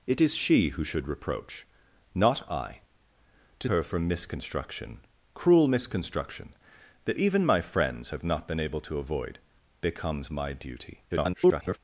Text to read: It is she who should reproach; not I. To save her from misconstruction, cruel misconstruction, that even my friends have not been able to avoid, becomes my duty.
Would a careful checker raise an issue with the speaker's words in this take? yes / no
yes